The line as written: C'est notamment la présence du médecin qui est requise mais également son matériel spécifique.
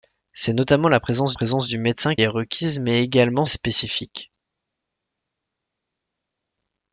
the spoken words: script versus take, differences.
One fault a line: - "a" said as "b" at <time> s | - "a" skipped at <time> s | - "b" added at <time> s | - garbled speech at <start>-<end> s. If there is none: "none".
- "présence" added at 1.3 s
- "qui" skipped at 2.2 s
- "son matériel" skipped at 3.4 s